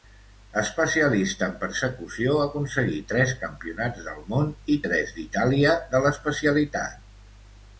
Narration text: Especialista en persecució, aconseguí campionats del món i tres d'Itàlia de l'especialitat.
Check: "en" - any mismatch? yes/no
no